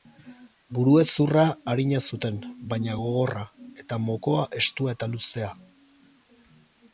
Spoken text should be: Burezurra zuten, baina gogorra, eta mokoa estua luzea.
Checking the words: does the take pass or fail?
fail